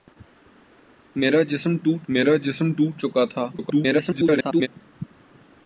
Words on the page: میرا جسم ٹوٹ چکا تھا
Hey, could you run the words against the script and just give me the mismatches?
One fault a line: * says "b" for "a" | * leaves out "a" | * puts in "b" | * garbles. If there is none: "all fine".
* puts in "میرا جسم ٹوٹ"
* garbles